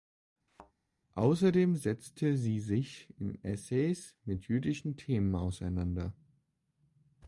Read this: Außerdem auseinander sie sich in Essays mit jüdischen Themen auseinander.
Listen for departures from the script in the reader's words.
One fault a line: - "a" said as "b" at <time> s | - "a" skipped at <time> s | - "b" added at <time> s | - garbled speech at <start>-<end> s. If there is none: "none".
- "auseinander" said as "setzte" at 1.8 s